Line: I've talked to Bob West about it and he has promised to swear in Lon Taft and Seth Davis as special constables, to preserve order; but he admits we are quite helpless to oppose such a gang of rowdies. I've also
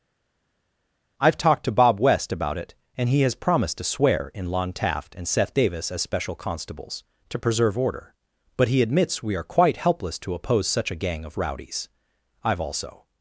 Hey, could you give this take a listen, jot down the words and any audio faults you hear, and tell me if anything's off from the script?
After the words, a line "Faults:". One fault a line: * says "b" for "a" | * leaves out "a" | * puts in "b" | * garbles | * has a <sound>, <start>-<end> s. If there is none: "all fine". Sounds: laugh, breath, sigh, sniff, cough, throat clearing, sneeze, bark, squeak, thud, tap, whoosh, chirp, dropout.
I've talked to Bob West about it and he has promised to swear in Lon Taft and Seth Davis as special constables, to preserve order; but he admits we are quite helpless to oppose such a gang of rowdies. I've also
Faults:
all fine